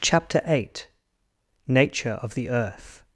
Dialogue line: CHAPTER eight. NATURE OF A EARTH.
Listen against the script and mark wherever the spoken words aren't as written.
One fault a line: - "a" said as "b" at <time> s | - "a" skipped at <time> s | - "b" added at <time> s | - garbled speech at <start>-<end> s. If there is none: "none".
- "A" said as "THE" at 2.3 s